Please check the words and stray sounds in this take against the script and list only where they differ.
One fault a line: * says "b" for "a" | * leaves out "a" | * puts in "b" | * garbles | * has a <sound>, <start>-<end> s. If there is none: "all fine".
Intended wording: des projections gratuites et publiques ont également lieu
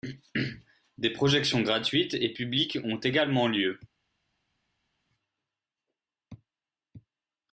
all fine